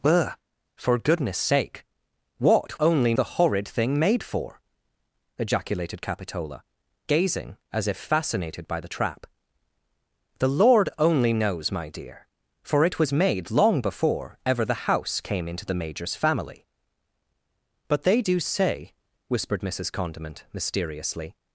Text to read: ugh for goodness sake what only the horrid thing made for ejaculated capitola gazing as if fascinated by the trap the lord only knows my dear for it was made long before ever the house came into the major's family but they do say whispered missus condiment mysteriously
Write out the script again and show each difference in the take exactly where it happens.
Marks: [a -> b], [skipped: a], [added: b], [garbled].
ugh for goodness sake what only the horrid thing made for ejaculated capitola gazing as if fascinated by the trap the lord only knows my dear for it was made long before ever the house came into the major's family but they do say whispered missus condiment mysteriously